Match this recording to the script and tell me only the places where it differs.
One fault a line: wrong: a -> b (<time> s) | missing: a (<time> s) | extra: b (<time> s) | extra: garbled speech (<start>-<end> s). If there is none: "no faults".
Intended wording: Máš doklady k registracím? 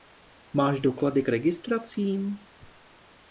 no faults